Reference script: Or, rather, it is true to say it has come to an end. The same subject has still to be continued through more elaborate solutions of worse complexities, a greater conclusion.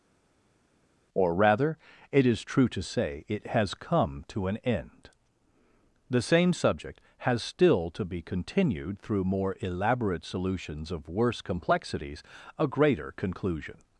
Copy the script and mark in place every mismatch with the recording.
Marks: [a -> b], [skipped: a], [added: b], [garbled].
Or, rather, it is true to say it has come to an end. The same subject has still to be continued through more elaborate solutions of worse complexities, a greater conclusion.